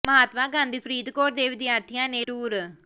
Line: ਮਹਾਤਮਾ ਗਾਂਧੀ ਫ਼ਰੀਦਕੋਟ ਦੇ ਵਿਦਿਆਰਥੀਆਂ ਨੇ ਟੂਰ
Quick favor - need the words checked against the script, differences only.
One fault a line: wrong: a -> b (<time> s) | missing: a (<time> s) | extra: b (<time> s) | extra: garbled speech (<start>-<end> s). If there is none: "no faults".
no faults